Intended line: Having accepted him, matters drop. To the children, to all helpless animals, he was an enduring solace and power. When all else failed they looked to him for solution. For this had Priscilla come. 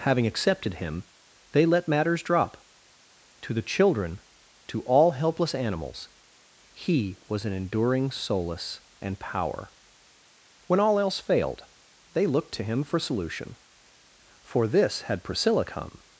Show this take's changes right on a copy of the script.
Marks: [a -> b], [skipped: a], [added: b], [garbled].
Having accepted him, [added: they let] matters drop. To the children, to all helpless animals, he was an enduring solace and power. When all else failed they looked to him for solution. For this had Priscilla come.